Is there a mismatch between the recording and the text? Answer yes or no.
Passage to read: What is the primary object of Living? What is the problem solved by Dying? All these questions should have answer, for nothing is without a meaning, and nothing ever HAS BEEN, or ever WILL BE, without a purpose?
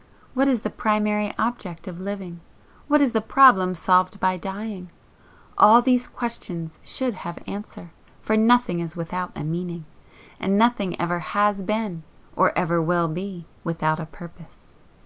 no